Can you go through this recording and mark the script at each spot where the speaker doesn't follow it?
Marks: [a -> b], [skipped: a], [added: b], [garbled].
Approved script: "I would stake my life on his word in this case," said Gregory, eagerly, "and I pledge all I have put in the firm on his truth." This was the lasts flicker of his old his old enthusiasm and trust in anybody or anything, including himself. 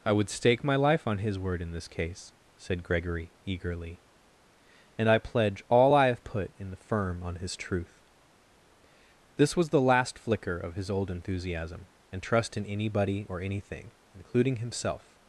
"I would stake my life on his word in this case," said Gregory, eagerly, "and I pledge all I have put in the firm on his truth." This was the [lasts -> last] flicker of his old [skipped: his old] enthusiasm and trust in anybody or anything, including himself.